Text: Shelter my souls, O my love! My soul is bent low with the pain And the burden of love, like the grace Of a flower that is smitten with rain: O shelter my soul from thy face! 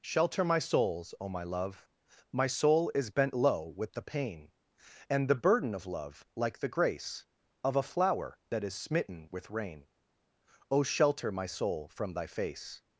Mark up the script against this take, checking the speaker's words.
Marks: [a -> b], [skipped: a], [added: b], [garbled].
Shelter my souls, O my love! My soul is bent low with the pain And the burden of love, like the grace Of a flower that is smitten with rain: O shelter my soul from thy face!